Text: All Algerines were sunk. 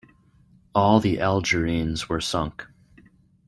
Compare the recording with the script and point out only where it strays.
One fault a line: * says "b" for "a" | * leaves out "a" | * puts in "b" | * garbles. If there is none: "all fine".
* puts in "the"